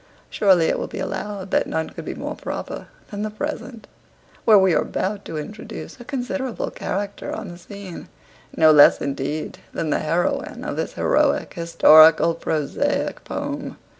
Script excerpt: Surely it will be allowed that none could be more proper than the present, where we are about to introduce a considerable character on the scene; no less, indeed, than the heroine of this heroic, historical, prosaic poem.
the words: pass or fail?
pass